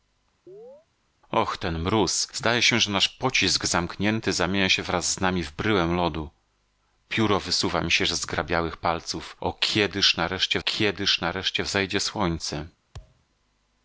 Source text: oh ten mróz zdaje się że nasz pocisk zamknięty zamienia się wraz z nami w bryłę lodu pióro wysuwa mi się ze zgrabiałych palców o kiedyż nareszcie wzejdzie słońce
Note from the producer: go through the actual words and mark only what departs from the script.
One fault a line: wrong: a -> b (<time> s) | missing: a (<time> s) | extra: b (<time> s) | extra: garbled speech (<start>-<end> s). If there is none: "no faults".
extra: kiedyż nareszcie (10.6 s)